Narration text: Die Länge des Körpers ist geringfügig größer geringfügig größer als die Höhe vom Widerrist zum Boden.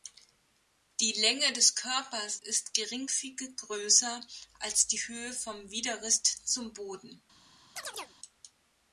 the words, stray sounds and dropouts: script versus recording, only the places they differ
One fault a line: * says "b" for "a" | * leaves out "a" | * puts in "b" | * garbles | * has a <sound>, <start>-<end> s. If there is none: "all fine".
* leaves out "geringfügig größer"
* has a chirp, 7.8-8.2 s